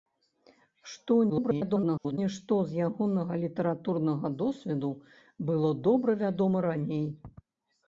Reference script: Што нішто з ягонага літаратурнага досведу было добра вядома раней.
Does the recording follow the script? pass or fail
fail